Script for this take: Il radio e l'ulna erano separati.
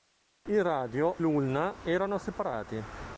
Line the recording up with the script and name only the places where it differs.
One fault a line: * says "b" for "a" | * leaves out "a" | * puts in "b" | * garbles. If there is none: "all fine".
* leaves out "e"